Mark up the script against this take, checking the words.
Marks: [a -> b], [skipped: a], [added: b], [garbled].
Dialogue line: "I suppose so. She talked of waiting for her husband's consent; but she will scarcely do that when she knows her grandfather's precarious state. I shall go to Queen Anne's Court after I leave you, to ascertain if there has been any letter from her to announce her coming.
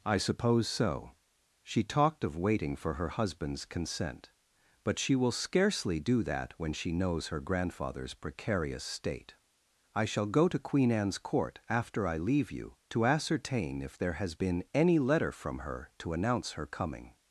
"I suppose so. She talked of waiting for her husband's consent; but she will scarcely do that when she knows her grandfather's precarious state. I shall go to Queen Anne's Court after I leave you, to ascertain if there has been any letter from her to announce her coming.